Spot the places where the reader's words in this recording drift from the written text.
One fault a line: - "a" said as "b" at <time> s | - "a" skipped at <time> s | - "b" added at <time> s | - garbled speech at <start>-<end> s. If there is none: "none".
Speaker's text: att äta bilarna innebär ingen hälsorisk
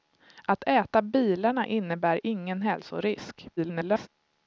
- garbled speech at 3.6-4.1 s